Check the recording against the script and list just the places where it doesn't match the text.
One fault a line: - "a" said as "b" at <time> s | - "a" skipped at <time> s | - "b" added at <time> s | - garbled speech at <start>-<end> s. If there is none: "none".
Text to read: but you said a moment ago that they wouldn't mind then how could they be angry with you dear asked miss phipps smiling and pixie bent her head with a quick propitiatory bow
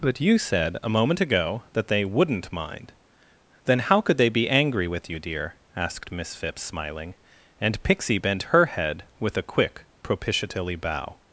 none